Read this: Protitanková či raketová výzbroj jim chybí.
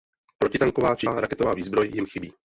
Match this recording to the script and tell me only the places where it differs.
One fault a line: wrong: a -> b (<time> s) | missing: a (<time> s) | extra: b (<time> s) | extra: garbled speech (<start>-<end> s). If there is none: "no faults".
no faults